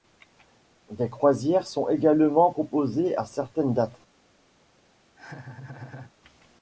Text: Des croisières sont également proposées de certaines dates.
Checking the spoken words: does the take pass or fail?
fail